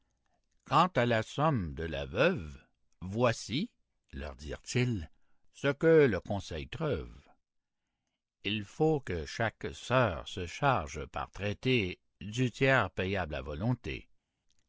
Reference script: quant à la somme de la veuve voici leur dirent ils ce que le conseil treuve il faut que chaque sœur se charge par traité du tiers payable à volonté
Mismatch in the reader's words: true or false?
false